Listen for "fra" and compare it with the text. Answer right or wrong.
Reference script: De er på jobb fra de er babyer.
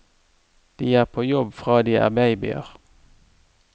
right